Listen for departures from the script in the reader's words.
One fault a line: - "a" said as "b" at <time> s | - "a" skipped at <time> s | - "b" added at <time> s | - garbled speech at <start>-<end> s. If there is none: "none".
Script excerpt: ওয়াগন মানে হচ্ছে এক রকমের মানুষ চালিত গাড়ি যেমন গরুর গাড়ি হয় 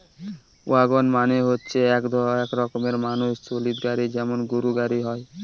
none